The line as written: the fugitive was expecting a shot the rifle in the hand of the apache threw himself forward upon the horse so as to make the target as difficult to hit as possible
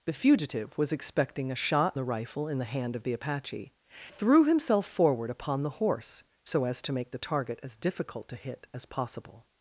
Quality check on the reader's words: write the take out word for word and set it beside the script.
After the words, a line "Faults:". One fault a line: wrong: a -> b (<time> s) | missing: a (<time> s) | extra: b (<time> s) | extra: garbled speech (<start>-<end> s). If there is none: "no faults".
the fugitive was expecting a shot the rifle in the hand of the apache threw himself forward upon the horse so as to make the target as difficult to hit as possible
Faults:
no faults